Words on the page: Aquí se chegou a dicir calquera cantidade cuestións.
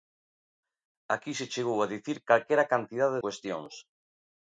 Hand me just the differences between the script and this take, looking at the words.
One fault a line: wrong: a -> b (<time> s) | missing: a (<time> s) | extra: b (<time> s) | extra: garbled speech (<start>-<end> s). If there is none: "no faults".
no faults